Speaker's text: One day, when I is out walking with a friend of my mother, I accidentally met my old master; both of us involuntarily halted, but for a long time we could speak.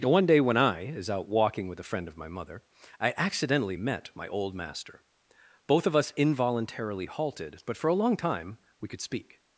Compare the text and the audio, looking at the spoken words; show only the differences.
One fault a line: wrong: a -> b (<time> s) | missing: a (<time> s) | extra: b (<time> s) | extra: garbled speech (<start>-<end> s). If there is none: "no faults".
no faults